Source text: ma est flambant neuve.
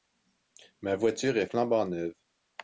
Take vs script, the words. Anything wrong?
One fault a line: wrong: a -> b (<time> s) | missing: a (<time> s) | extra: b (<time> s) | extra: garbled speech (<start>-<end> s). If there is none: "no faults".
extra: voiture (0.9 s)